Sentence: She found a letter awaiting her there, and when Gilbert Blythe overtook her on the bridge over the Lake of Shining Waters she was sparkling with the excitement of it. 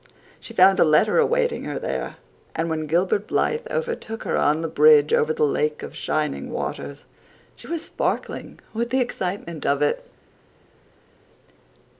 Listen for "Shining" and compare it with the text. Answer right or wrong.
right